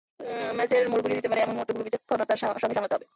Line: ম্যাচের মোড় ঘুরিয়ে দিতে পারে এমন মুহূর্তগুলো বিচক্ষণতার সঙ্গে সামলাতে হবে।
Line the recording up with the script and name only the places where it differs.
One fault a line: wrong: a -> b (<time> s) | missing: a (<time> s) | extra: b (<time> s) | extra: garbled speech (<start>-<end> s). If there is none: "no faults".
no faults